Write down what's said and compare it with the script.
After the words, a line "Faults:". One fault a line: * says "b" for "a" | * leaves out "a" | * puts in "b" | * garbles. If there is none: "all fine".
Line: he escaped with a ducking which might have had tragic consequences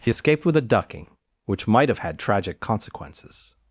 he escaped with a ducking which might have had tragic consequences
Faults:
all fine